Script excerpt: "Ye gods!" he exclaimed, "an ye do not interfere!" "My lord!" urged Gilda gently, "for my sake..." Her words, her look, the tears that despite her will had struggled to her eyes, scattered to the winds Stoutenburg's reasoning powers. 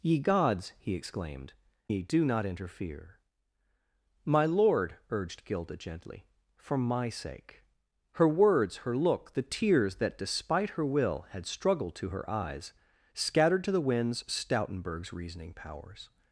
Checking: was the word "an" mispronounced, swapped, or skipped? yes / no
yes